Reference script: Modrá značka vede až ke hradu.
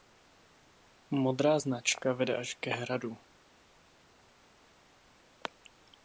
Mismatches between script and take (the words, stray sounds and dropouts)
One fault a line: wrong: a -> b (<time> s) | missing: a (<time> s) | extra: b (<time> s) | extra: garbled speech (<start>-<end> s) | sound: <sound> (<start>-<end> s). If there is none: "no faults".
no faults